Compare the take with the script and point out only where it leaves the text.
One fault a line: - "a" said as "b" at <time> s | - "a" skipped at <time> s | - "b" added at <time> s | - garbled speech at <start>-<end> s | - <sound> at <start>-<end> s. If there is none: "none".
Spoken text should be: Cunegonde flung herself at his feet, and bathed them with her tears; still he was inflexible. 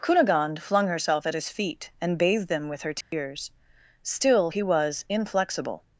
- dropout at 3.0-3.1 s